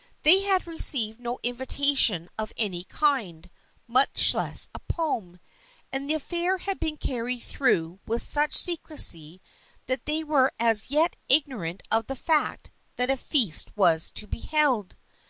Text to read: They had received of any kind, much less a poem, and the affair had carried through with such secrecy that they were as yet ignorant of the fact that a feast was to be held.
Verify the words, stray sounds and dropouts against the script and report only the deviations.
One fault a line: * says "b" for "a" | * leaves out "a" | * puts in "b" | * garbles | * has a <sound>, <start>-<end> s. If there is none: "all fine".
* puts in "no invitation"
* puts in "been"